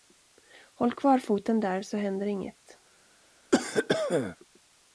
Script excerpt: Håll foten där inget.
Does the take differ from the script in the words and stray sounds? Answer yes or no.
yes